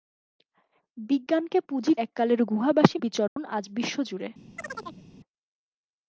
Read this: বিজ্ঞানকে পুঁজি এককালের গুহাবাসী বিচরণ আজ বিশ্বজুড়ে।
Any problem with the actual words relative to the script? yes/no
no